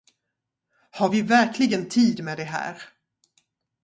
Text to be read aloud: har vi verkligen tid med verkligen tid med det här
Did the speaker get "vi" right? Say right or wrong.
right